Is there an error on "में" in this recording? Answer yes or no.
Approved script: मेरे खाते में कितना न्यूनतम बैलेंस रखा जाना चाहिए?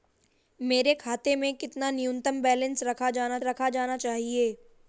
no